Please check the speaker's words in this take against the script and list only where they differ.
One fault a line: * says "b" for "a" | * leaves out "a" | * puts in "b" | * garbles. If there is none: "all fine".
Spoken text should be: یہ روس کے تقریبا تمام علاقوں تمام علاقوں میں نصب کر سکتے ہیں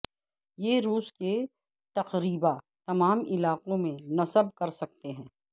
* leaves out "تمام علاقوں"